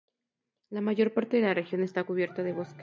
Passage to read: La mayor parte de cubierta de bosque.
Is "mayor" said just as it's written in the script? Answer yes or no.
yes